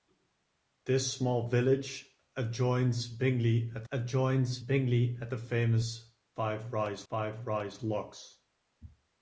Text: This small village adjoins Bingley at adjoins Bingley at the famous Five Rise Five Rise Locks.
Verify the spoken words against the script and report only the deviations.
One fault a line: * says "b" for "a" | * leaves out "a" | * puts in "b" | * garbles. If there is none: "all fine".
all fine